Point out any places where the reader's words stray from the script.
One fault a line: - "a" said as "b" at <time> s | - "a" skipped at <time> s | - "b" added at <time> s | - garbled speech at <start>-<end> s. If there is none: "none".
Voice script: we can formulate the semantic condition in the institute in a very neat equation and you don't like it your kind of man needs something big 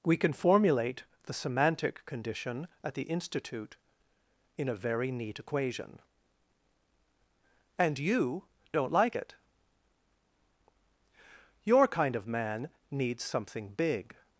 - "in" said as "at" at 2.8 s